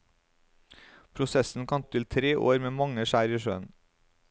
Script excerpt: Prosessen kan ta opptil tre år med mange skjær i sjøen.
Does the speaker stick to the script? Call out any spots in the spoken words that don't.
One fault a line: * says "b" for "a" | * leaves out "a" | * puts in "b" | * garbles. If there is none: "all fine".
* leaves out "ta"